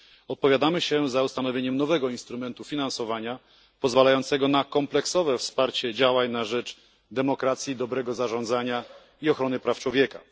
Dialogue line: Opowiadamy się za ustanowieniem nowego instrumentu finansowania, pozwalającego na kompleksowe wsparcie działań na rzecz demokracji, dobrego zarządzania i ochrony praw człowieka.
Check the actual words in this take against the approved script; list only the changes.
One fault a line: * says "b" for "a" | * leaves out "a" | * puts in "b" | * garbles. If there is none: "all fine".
all fine